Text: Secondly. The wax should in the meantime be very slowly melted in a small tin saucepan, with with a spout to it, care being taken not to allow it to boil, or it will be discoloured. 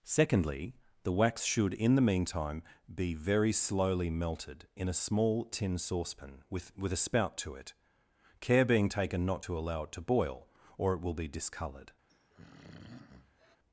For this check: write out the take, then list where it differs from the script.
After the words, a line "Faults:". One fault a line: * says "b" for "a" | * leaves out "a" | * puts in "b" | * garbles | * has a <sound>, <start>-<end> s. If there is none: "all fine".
Secondly. The wax should in the meantime be very slowly melted in a small tin saucepan, with with a spout to it, care being taken not to allow it to boil, or it will be discoloured.
Faults:
* has a throat clearing, 12.1-13.6 s